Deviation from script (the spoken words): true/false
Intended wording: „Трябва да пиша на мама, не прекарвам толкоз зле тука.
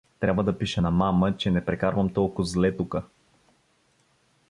true